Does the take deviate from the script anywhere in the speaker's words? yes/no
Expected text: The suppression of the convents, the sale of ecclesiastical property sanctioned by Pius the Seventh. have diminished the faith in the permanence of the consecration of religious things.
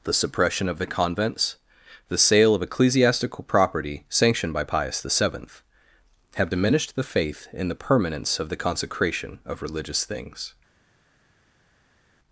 no